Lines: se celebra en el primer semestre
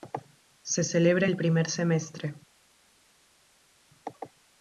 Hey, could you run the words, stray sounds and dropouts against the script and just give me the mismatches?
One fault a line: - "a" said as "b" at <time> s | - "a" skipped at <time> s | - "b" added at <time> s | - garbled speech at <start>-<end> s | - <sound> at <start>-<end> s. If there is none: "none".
- "en" skipped at 1.3 s